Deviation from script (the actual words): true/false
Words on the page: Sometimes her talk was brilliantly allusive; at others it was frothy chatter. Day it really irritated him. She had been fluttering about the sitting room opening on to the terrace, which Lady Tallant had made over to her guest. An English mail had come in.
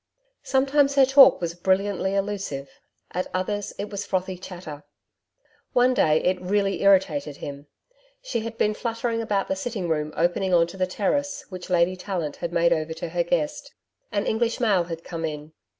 true